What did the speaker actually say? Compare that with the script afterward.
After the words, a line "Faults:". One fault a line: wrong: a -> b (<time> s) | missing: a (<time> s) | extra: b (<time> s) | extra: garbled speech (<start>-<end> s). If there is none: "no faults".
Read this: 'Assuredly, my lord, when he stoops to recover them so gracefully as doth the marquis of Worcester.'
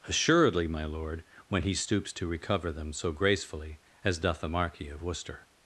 'Assuredly, my lord, when he stoops to recover them so gracefully as doth the marquis of Worcester.'
Faults:
no faults